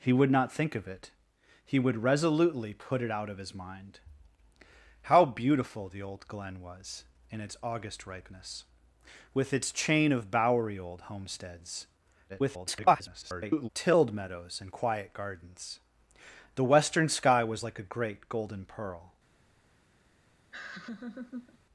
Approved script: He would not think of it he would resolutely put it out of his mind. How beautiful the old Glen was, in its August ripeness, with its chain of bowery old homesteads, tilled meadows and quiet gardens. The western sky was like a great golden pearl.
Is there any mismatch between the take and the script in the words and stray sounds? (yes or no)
yes